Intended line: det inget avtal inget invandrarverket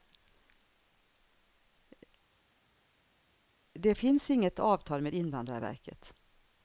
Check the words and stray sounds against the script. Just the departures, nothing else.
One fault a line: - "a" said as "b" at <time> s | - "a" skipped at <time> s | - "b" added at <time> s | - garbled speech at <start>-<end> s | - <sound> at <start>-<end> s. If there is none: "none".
- "finns" added at 3.9 s
- "inget" said as "med" at 5.0 s